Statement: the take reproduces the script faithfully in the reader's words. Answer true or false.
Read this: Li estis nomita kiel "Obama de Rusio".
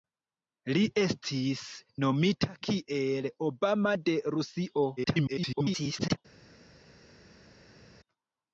false